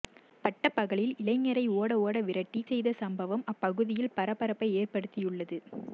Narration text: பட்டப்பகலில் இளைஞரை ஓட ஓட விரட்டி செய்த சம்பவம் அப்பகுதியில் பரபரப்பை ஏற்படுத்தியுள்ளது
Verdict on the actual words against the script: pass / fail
pass